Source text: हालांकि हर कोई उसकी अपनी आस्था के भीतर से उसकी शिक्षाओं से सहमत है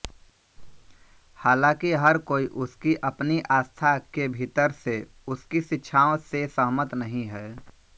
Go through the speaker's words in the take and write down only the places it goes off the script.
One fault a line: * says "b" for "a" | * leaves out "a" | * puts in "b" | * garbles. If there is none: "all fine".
* puts in "नहीं"